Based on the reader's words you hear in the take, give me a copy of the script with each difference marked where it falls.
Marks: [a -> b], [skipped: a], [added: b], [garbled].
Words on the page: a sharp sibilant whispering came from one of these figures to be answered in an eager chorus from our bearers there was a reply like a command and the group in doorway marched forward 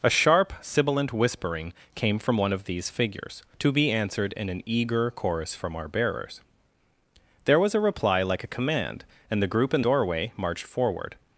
a sharp sibilant whispering came from one of these figures to be answered in an eager chorus from our bearers there was a reply like a command and the group in doorway marched forward